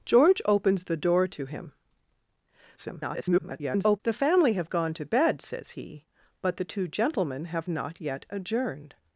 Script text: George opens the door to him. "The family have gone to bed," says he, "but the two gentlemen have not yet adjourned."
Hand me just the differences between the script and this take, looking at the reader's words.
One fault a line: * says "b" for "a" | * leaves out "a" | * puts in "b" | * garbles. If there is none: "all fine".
* garbles